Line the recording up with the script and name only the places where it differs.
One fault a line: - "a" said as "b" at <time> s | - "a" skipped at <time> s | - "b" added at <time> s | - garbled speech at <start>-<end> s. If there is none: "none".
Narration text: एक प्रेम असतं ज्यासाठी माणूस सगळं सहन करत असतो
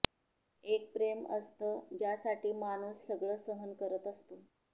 none